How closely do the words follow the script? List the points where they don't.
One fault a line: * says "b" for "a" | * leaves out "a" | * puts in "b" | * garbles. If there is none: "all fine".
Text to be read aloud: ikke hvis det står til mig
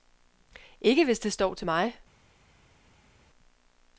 all fine